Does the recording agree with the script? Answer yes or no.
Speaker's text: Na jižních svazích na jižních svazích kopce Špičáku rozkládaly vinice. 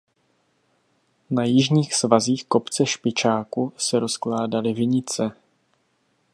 no